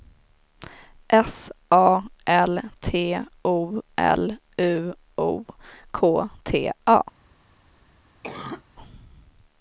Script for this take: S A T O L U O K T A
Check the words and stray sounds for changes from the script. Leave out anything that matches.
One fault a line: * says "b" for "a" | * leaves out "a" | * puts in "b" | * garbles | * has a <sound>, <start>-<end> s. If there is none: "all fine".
* puts in "L"
* has a cough, 8.2-8.6 s